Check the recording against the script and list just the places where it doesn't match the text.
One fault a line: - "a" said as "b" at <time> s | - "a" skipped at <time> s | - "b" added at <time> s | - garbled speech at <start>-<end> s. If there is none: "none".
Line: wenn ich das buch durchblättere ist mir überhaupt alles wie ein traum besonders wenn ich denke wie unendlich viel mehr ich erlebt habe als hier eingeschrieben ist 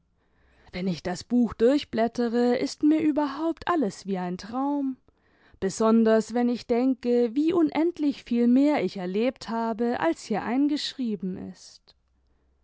none